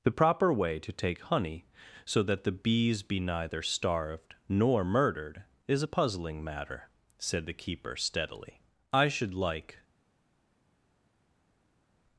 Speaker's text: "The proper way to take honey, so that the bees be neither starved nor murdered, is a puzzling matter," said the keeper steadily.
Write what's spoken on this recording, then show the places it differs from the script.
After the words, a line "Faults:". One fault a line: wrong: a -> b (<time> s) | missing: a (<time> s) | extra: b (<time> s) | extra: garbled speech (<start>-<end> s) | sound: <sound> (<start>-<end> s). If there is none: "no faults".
"The proper way to take honey, so that the bees be neither starved nor murdered, is a puzzling matter," said the keeper steadily. "I should like
Faults:
extra: I should like (8.9 s)